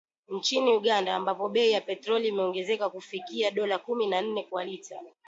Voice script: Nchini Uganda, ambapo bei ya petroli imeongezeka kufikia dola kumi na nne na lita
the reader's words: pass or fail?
fail